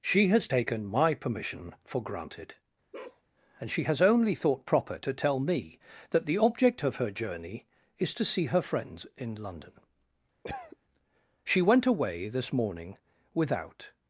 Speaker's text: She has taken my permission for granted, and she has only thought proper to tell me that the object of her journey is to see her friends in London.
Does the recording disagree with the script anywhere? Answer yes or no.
yes